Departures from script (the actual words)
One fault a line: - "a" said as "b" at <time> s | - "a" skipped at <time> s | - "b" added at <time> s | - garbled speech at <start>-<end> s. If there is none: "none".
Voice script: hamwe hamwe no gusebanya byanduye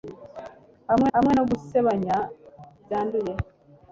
none